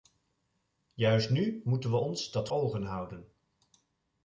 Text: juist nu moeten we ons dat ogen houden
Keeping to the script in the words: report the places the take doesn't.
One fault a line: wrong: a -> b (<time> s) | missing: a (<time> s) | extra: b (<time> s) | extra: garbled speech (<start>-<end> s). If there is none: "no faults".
no faults